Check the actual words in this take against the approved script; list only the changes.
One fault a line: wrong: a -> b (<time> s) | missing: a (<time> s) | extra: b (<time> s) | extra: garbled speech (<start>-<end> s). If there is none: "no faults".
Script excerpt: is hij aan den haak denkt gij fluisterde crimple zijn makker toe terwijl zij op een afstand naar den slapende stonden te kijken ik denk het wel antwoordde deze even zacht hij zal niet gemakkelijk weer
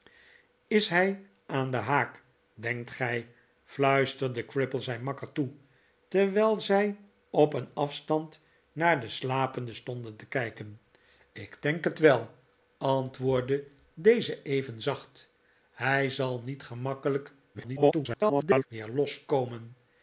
extra: garbled speech (17.5-18.7 s)